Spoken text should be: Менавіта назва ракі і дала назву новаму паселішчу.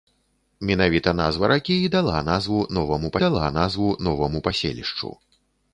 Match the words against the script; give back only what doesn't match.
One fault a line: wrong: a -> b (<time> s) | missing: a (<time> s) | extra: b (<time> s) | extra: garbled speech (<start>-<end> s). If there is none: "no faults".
extra: дала назву новаму (3.2 s)